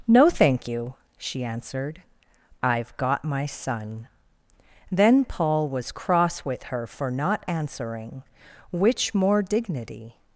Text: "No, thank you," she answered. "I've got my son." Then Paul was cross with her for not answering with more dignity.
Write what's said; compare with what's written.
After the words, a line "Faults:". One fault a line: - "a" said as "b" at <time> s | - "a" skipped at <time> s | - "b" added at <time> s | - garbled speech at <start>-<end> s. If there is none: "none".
"No, thank you," she answered. "I've got my son." Then Paul was cross with her for not answering which more dignity.
Faults:
- "with" said as "which" at 8.7 s